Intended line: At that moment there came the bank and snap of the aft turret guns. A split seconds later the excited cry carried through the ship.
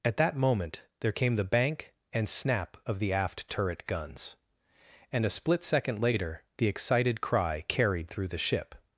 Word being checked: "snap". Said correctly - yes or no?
yes